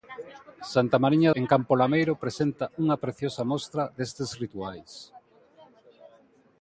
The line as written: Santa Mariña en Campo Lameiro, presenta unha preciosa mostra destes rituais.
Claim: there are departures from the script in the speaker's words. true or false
false